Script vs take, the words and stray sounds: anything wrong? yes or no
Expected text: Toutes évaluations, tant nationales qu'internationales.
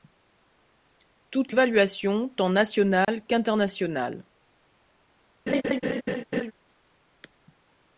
yes